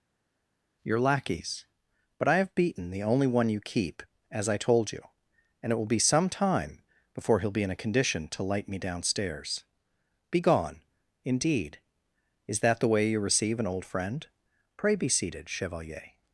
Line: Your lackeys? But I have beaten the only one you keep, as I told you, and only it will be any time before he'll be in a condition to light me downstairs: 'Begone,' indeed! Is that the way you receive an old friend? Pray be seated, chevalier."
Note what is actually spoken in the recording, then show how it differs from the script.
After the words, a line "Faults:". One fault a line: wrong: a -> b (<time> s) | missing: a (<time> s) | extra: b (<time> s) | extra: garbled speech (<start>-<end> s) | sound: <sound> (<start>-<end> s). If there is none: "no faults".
Your lackeys? But I have beaten the only one you keep, as I told you, and it will be some time before he'll be in a condition to light me downstairs: 'Begone,' indeed! Is that the way you receive an old friend? Pray be seated, chevalier."
Faults:
missing: only (5.7 s)
wrong: any -> some (6.0 s)